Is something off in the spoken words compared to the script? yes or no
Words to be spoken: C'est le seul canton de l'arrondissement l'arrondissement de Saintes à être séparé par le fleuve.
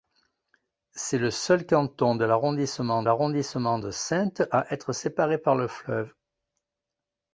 no